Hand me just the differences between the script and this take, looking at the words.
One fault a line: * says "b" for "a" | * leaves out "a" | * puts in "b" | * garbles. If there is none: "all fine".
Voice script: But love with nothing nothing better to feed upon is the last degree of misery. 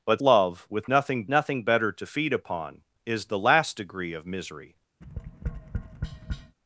all fine